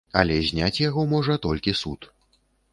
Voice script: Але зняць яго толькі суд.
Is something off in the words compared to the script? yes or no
yes